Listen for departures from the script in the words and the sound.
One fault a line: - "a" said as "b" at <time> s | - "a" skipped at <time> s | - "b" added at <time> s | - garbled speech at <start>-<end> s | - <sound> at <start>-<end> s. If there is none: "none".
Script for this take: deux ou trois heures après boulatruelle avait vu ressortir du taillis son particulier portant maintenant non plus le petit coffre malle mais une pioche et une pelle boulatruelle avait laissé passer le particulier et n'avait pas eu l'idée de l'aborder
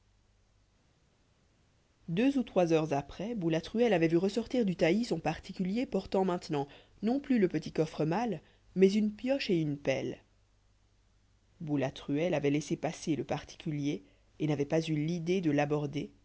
none